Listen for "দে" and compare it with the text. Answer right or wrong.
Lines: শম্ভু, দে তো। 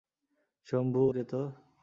right